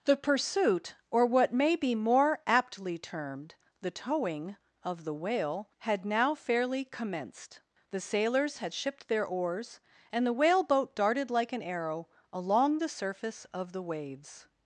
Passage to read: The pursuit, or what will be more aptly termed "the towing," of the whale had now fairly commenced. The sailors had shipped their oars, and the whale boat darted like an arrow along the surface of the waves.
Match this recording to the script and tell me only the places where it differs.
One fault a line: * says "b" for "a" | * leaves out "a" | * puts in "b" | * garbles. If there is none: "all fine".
* says "may" for "will"